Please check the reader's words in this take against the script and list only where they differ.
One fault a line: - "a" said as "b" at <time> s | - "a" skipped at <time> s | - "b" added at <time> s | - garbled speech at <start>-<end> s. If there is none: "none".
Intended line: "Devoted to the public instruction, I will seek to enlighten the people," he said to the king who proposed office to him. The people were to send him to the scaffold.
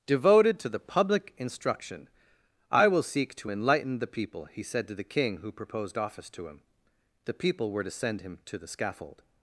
none